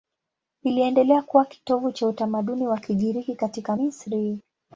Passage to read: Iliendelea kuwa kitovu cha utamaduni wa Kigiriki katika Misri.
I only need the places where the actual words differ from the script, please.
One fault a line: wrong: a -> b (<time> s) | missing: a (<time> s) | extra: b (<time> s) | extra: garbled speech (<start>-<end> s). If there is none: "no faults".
no faults